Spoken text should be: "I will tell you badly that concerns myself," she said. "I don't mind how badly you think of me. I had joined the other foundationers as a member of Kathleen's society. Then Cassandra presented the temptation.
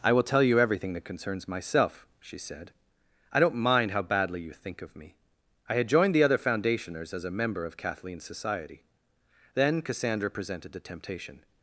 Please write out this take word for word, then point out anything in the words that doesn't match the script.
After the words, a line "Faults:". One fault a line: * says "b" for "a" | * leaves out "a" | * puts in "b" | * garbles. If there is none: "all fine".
"I will tell you everything that concerns myself," she said. "I don't mind how badly you think of me. I had joined the other foundationers as a member of Kathleen's society. Then Cassandra presented the temptation.
Faults:
* says "everything" for "badly"